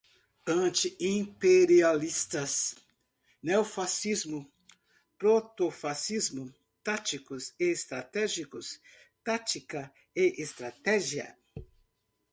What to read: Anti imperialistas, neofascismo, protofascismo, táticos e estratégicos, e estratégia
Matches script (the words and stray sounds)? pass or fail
fail